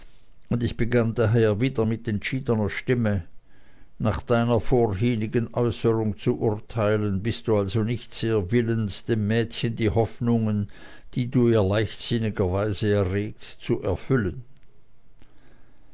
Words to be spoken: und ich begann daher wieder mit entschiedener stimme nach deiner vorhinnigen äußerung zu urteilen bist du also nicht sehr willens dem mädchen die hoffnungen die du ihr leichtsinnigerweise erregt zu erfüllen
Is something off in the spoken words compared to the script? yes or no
no